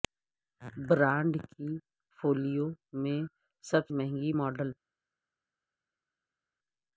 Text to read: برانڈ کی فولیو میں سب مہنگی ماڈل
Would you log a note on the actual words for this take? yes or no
no